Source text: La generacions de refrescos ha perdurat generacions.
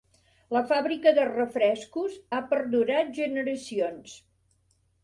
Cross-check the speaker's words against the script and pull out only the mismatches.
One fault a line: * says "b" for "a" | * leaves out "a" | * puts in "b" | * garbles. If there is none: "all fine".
* says "fàbrica" for "generacions"